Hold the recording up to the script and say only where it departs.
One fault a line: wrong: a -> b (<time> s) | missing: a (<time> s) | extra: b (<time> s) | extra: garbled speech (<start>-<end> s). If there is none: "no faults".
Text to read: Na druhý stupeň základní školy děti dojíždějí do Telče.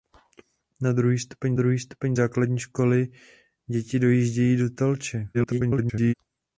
extra: druhý stupeň (1.5 s)
extra: garbled speech (5.3-6.1 s)